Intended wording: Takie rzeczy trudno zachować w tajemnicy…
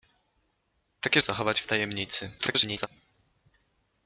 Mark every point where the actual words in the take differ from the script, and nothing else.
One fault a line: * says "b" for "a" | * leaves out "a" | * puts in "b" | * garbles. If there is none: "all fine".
* leaves out "rzeczy trudno"
* garbles